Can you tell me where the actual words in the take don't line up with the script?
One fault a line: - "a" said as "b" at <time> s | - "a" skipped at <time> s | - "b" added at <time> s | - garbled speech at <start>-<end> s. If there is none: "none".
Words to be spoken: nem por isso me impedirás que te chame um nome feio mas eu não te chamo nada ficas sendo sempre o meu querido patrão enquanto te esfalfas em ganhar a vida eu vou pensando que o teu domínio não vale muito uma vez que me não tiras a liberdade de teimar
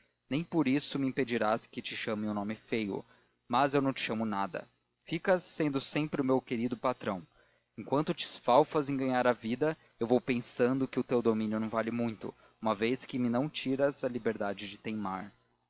none